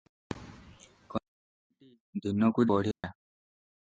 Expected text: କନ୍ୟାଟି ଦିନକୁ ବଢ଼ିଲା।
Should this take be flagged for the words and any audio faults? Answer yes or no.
yes